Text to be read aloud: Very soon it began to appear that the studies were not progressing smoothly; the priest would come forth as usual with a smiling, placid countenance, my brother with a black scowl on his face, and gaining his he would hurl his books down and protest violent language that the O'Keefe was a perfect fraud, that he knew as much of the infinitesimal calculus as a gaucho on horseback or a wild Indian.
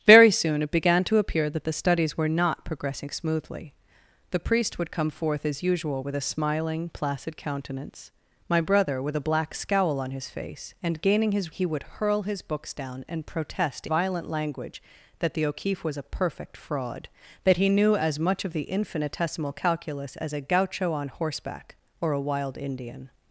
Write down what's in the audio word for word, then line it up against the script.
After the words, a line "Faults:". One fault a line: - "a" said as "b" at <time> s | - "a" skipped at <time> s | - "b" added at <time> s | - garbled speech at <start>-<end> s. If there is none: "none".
Very soon it began to appear that the studies were not progressing smoothly; the priest would come forth as usual with a smiling, placid countenance, my brother with a black scowl on his face, and gaining his he would hurl his books down and protest violent language that the O'Keefe was a perfect fraud, that he knew as much of the infinitesimal calculus as a gaucho on horseback or a wild Indian.
Faults:
none